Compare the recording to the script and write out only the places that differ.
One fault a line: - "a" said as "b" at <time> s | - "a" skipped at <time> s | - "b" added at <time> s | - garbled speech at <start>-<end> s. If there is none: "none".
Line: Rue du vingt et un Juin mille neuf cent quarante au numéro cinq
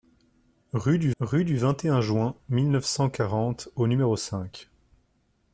- "rue du" added at 1.2 s